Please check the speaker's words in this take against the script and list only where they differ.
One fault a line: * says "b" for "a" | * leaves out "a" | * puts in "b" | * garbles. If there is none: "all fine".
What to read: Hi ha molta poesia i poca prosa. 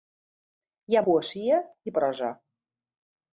* leaves out "molta"
* leaves out "poca"